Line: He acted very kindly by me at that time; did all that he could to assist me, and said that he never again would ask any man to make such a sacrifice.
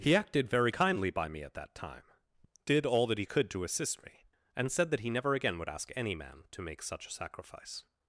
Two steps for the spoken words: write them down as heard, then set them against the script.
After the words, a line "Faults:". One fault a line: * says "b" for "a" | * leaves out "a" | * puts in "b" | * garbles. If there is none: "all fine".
He acted very kindly by me at that time; did all that he could to assist me, and said that he never again would ask any man to make such a sacrifice.
Faults:
all fine